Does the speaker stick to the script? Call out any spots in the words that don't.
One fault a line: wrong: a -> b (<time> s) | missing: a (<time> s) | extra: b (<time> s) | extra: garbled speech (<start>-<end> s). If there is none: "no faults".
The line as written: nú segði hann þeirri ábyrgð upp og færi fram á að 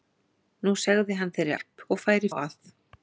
missing: ábyrgð (1.5 s)
missing: fram (2.3 s)